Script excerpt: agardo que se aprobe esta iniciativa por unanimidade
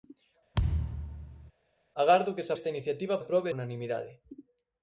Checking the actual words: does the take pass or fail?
fail